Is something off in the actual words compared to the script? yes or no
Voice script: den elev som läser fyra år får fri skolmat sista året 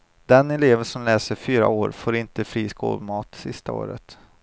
yes